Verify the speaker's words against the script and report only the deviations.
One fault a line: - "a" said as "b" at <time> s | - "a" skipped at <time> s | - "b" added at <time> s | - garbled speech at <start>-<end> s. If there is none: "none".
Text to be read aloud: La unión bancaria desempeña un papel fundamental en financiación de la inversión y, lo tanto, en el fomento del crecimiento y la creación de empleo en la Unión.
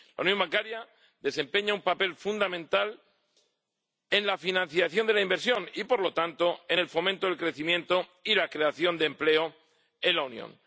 - "la" added at 4.2 s
- "por" added at 5.8 s